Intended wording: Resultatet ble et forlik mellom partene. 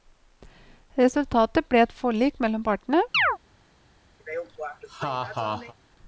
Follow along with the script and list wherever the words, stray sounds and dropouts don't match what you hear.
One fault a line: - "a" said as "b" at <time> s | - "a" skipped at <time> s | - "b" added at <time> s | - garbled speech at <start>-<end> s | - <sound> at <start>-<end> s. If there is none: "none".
- chirp at 3.1-3.4 s
- laugh at 4.2-5.7 s